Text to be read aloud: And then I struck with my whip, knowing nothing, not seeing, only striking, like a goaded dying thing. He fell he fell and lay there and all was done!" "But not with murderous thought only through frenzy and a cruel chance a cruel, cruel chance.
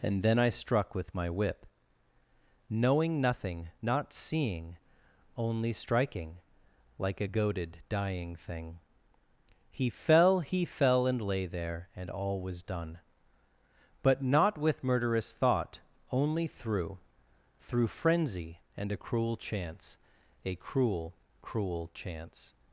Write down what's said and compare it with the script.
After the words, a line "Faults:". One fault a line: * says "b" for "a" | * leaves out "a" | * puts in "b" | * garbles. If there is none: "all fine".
And then I struck with my whip, knowing nothing, not seeing, only striking, like a goaded dying thing. He fell he fell and lay there and all was done!" "But not with murderous thought only through through frenzy and a cruel chance a cruel, cruel chance.
Faults:
* puts in "through"